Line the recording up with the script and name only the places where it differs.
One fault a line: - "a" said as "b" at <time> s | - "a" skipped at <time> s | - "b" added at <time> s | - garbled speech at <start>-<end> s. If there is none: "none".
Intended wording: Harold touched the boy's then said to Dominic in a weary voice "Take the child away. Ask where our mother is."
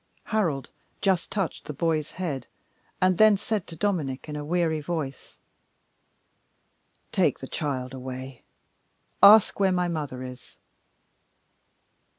- "just" added at 1.0 s
- "head and" added at 2.1 s
- "our" said as "my" at 9.7 s